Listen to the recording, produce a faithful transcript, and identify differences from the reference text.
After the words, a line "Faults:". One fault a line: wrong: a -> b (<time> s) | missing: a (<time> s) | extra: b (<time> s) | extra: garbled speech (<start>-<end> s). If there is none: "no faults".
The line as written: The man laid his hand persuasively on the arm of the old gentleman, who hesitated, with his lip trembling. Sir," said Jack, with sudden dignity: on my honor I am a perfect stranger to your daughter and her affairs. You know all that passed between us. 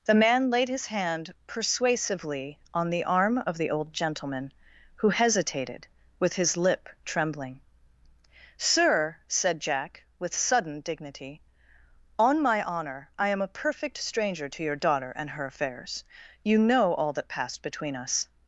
The man laid his hand persuasively on the arm of the old gentleman, who hesitated, with his lip trembling. Sir," said Jack, with sudden dignity: on my honor I am a perfect stranger to your daughter and her affairs. You know all that passed between us.
Faults:
no faults